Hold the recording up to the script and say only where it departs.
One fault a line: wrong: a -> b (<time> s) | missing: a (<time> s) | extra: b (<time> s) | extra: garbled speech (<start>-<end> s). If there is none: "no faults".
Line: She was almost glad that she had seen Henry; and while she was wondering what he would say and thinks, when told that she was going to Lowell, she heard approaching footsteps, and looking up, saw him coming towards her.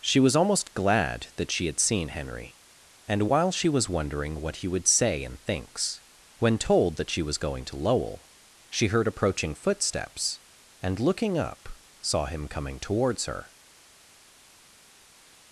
no faults